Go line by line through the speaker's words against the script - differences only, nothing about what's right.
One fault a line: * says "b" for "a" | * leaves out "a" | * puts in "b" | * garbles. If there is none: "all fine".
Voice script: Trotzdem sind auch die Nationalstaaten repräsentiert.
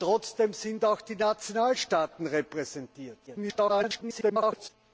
* garbles